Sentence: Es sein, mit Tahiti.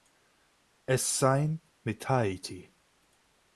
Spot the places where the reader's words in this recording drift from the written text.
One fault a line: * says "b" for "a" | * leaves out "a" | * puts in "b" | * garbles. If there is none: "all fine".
all fine